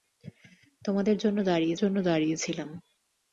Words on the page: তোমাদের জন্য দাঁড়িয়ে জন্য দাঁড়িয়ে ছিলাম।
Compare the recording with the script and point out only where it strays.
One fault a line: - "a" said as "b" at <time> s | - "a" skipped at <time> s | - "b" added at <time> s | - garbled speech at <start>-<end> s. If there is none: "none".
none